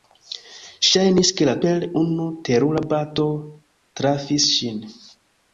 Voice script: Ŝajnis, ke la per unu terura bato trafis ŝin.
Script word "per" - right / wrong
right